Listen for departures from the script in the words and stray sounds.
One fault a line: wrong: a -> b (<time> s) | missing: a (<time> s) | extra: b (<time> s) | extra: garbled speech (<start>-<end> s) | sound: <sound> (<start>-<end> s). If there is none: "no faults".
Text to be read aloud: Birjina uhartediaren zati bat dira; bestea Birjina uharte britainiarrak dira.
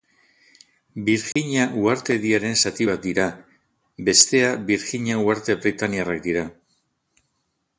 sound: dropout (1.3-1.4 s)